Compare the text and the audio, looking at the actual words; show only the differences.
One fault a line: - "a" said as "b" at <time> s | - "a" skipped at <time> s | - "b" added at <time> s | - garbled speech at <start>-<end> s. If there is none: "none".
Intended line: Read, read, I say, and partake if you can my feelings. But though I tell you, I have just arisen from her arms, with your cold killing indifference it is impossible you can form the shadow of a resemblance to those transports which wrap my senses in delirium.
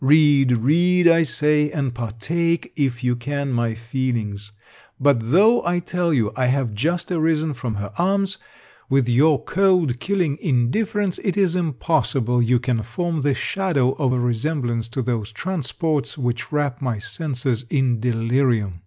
none